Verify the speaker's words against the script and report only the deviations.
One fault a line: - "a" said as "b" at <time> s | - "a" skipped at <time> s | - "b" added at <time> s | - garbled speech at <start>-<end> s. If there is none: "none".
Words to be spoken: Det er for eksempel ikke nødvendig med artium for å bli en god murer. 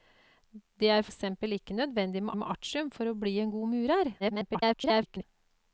- "for" skipped at 1.1 s
- "med" added at 2.4 s
- garbled speech at 4.2-5.2 s